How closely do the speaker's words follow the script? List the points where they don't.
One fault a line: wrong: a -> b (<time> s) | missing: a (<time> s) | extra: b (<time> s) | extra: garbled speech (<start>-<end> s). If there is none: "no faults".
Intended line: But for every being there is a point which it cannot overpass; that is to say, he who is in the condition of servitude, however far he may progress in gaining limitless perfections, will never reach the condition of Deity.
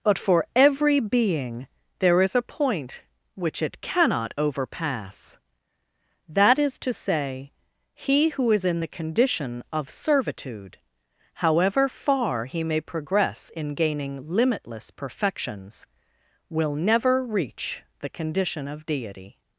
no faults